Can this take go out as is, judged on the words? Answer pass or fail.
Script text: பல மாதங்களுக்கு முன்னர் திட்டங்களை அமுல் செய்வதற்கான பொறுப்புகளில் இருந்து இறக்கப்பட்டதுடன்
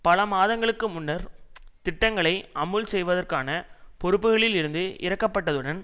pass